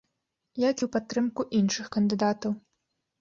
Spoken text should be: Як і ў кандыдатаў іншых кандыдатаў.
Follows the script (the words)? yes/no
no